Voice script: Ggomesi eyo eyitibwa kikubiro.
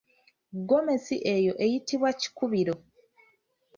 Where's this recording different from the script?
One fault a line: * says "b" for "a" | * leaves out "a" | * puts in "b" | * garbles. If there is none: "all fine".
all fine